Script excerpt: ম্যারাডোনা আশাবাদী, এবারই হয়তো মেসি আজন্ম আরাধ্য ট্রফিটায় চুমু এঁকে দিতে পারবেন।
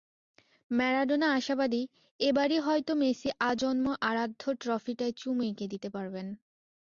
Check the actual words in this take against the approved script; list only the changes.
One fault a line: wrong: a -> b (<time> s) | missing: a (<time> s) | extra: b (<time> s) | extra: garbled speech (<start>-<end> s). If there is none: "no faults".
no faults